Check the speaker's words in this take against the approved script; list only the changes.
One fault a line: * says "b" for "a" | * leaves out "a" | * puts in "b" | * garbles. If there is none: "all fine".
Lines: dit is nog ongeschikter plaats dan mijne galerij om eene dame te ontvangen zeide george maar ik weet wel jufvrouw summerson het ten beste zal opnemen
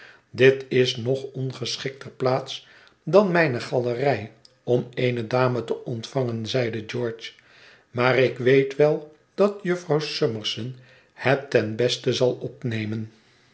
* puts in "dat"